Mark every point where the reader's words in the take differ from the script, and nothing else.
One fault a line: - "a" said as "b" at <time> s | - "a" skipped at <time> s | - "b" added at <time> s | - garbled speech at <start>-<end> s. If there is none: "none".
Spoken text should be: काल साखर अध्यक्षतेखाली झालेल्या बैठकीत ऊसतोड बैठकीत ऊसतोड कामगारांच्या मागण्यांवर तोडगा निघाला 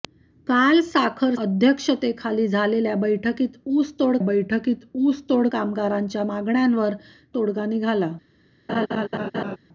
none